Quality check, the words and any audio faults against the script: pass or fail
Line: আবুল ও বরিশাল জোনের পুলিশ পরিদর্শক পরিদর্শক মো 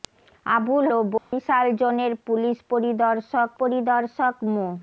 fail